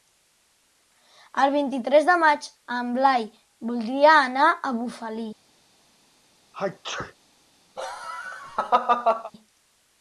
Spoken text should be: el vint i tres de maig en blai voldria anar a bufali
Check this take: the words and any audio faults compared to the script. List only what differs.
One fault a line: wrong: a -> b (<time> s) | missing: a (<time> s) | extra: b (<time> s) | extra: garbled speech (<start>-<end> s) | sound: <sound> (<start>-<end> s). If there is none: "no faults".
sound: sneeze (6.5-7.1 s)
sound: laugh (7.8-9.3 s)